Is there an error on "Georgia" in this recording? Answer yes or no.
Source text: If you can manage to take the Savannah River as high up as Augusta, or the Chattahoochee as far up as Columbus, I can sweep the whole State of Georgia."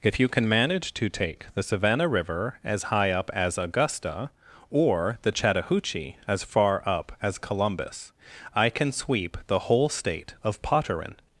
yes